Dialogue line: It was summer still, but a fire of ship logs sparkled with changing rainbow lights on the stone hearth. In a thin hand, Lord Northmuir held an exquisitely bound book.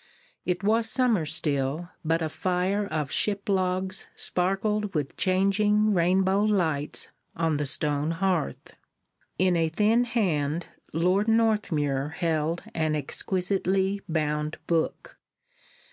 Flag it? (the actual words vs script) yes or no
no